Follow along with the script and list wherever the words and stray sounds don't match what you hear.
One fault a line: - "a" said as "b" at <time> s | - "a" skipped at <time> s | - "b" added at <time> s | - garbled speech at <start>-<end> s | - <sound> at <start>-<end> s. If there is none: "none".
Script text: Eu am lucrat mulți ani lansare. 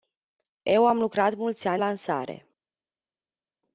none